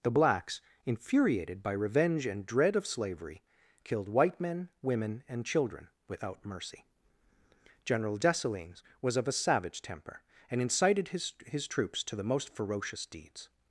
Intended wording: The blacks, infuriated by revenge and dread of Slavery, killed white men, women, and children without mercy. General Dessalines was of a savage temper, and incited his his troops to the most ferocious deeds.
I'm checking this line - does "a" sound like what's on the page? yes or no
yes